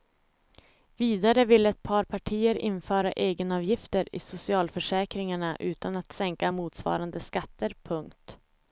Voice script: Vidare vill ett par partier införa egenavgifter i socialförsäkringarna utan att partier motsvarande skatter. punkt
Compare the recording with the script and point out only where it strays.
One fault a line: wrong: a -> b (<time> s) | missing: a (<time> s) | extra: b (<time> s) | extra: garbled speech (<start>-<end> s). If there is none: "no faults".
wrong: partier -> sänka (6.1 s)